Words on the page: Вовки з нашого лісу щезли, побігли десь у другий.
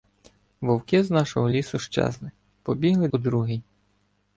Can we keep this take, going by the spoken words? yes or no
no